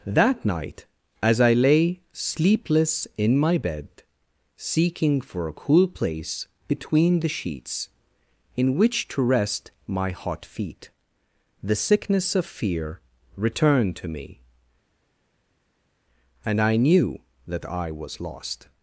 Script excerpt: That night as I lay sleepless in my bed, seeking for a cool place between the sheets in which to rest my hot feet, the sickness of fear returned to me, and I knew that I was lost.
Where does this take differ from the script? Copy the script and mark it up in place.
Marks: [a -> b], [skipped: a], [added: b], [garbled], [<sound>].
That night as I lay sleepless in my bed, seeking for a cool place between the sheets in which to rest my hot feet, the sickness of fear returned to me, and I knew that I was lost.